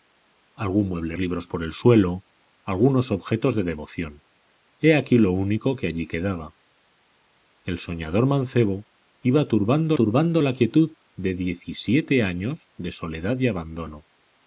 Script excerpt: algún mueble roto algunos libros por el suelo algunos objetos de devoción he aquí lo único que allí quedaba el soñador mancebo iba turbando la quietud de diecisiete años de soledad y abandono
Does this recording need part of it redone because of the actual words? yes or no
yes